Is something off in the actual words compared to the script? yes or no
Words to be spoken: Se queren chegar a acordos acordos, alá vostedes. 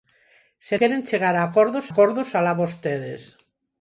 no